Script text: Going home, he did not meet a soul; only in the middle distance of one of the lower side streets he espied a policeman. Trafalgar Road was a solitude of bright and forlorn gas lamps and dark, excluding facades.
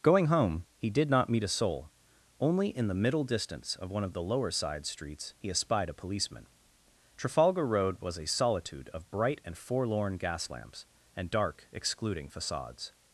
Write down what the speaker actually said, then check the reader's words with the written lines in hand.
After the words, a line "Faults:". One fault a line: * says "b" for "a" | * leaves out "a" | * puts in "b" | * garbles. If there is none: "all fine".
Going home, he did not meet a soul; only in the middle distance of one of the lower side streets he espied a policeman. Trafalgar Road was a solitude of bright and forlorn gas lamps and dark, excluding facades.
Faults:
all fine